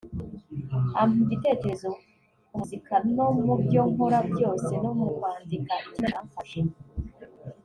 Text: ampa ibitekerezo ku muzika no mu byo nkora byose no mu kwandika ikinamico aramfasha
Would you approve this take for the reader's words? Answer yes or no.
yes